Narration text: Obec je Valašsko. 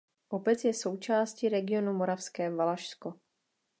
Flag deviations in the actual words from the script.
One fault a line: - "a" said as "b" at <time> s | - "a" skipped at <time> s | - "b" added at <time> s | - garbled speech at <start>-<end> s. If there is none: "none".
- "součástí regionu Moravské" added at 0.7 s